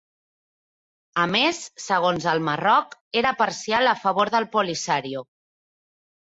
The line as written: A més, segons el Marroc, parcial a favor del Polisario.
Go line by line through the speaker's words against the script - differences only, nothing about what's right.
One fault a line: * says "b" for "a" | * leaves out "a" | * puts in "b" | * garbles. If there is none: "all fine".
* puts in "era"